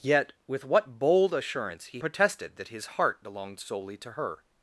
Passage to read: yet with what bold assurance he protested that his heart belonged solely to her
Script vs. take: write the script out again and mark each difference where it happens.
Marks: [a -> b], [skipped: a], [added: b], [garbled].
yet with what bold assurance he protested that his heart belonged solely to her